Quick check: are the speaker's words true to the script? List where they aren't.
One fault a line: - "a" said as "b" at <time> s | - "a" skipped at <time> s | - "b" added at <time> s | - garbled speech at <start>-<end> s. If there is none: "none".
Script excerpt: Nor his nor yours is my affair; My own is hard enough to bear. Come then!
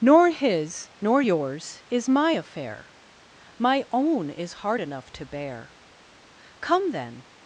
none